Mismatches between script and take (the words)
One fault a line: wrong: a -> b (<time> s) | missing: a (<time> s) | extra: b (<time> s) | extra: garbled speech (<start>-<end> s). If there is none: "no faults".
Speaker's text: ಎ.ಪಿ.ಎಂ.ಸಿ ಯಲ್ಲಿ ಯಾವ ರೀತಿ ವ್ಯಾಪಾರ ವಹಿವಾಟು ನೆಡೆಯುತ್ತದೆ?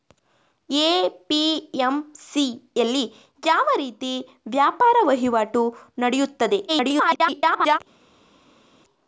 extra: garbled speech (6.7-7.8 s)